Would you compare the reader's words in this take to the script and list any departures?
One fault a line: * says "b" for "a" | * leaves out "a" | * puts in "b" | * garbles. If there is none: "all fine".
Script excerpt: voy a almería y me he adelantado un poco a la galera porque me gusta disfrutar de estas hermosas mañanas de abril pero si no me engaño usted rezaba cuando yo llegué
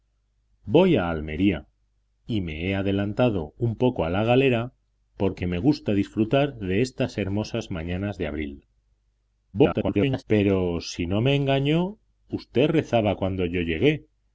* garbles